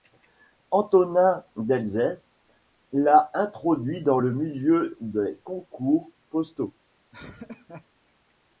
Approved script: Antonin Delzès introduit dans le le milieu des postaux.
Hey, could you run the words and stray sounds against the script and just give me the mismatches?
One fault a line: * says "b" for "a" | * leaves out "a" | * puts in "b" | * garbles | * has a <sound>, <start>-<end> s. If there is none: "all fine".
* puts in "l'a"
* leaves out "le"
* puts in "concours"
* has a laugh, 7.1-7.9 s